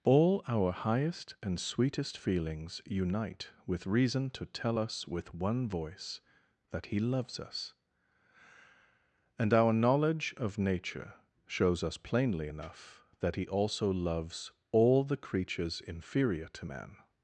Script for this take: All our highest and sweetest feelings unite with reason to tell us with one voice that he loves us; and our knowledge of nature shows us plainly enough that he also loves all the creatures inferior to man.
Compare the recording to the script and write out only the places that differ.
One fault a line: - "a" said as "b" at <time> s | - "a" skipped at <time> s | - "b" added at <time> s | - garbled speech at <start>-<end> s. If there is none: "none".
none